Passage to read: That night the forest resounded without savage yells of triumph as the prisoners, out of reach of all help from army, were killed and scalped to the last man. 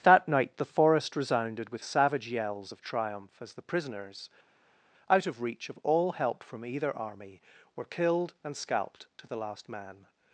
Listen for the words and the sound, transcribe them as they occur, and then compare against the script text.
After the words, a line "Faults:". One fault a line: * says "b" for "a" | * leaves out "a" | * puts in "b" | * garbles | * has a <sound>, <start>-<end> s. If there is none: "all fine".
That night the forest resounded with savage yells of triumph as the prisoners, out of reach of all help from either army, were killed and scalped to the last man.
Faults:
* says "with" for "without"
* puts in "either"